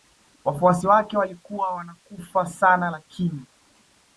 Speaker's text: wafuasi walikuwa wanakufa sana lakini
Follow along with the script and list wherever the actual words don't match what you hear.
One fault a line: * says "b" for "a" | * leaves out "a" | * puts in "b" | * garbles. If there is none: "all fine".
* puts in "wake"